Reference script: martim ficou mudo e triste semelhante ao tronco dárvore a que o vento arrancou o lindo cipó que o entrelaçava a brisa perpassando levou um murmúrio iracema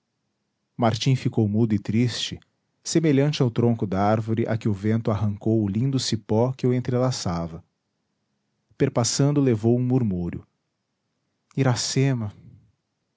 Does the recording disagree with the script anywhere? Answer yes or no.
yes